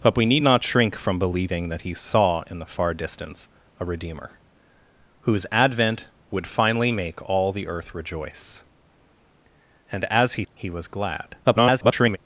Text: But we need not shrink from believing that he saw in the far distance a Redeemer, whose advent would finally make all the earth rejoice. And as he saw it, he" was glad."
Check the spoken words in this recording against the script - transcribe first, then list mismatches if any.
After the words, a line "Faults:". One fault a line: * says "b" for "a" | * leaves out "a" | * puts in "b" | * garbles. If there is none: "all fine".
But we need not shrink from believing that he saw in the far distance a Redeemer, whose advent would finally make all the earth rejoice. And as he he" was glad." [garbled]
Faults:
* leaves out "saw it"
* garbles